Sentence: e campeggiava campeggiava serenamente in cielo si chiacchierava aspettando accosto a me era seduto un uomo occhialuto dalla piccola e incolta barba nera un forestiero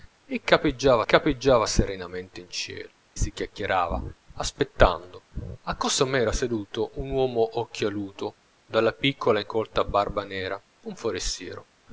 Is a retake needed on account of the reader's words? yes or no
no